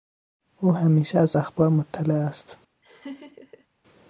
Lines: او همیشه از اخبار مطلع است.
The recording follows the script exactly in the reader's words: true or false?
true